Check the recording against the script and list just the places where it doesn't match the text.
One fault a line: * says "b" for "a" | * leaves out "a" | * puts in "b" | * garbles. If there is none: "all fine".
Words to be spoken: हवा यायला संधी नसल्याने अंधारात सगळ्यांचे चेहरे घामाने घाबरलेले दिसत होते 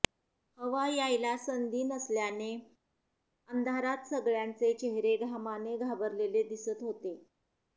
all fine